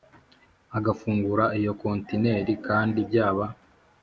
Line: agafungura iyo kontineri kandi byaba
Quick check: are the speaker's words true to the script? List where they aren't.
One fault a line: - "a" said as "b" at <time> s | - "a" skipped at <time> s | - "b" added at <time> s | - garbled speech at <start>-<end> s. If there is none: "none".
none